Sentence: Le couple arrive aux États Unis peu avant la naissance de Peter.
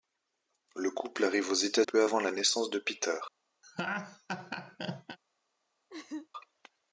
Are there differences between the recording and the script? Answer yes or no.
yes